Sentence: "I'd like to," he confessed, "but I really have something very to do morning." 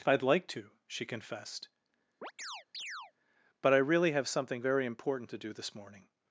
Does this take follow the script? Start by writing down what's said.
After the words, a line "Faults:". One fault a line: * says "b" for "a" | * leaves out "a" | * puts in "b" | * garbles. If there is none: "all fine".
"I'd like to," she confessed, "but I really have something very important to do this morning."
Faults:
* says "she" for "he"
* puts in "important"
* puts in "this"